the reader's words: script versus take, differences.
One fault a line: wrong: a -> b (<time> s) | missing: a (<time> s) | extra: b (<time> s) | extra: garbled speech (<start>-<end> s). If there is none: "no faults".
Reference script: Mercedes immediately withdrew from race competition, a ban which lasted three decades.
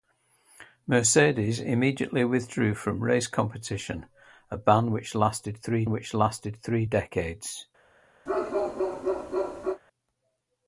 extra: which lasted three (5.9 s)